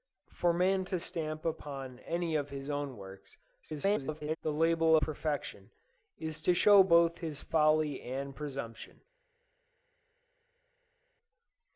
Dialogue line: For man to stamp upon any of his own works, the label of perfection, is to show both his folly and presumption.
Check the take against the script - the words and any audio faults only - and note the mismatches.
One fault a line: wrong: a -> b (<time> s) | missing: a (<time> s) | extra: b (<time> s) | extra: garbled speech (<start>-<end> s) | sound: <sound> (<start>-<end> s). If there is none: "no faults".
extra: garbled speech (3.6-4.4 s)
missing: of (5.0 s)